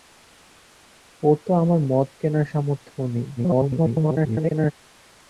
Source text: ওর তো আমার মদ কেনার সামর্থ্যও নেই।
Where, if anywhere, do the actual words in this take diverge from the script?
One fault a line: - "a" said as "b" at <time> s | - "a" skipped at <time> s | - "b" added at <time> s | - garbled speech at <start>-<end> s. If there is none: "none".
- garbled speech at 3.4-4.7 s